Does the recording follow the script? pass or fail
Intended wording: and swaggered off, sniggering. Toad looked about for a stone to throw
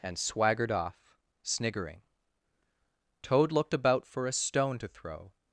pass